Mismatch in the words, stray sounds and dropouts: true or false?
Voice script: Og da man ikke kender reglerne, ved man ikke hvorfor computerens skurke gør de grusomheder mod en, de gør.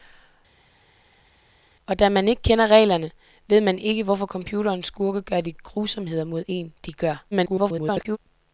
true